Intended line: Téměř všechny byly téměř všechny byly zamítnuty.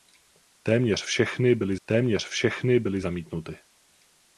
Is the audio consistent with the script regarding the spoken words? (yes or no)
yes